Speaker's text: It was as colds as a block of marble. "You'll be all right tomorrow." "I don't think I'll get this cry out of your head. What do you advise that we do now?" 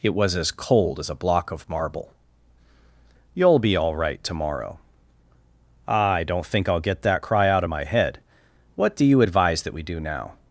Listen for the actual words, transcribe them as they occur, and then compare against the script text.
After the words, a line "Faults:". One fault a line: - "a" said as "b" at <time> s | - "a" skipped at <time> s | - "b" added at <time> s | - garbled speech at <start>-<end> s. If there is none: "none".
It was as cold as a block of marble. "You'll be all right tomorrow." "I don't think I'll get that cry out of my head. What do you advise that we do now?"
Faults:
- "colds" said as "cold" at 0.5 s
- "this" said as "that" at 7.0 s
- "your" said as "my" at 7.7 s